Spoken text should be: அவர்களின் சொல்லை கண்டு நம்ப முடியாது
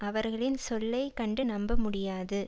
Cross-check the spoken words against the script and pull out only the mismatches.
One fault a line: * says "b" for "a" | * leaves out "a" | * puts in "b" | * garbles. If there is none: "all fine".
all fine